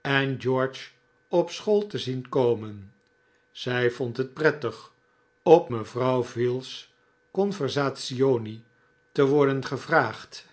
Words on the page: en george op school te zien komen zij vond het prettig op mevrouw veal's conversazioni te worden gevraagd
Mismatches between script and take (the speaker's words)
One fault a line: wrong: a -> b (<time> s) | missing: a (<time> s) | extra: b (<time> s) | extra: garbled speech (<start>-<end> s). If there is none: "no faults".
no faults